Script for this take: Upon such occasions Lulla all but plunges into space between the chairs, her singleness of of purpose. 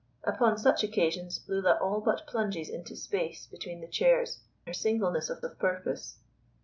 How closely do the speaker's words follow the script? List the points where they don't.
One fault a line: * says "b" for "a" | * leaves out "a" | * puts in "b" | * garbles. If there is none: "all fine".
all fine